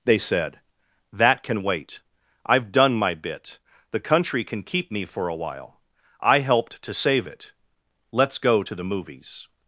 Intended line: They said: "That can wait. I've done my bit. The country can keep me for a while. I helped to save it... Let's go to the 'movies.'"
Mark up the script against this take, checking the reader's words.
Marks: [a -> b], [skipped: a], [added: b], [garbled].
They said: "That can wait. I've done my bit. The country can keep me for a while. I helped to save it... Let's go to the 'movies.'"